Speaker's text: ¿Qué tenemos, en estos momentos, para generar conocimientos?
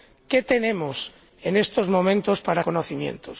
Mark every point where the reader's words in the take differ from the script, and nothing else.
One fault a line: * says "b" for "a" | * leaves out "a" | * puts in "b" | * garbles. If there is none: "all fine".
* leaves out "generar"